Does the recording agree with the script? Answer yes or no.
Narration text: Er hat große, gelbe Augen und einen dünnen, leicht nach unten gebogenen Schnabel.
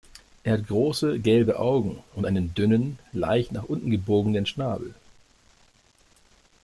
yes